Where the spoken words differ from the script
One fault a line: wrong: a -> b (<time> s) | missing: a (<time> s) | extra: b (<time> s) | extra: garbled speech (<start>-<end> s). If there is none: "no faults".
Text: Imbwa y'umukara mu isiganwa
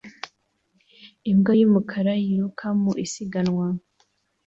extra: yiruka (2.2 s)